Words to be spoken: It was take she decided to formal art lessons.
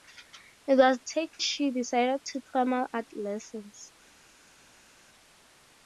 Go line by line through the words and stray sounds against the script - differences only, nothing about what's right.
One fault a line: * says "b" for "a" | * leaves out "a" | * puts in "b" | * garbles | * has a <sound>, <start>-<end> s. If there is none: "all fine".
all fine